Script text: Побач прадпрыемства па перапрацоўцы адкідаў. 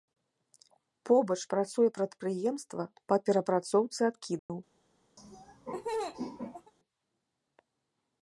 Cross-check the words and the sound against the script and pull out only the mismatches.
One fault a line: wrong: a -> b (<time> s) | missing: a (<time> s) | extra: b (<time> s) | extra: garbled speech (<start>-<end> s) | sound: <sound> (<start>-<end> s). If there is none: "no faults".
extra: працуе (1.5 s)
sound: dropout (4.4-4.5 s)
sound: laugh (5.2-6.7 s)